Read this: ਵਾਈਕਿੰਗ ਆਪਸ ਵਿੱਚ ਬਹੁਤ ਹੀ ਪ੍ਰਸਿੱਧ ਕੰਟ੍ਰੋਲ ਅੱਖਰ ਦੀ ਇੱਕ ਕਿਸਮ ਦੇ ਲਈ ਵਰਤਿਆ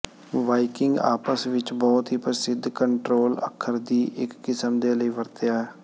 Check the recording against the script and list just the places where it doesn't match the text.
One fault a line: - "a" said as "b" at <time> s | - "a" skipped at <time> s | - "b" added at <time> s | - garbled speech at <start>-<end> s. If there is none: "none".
none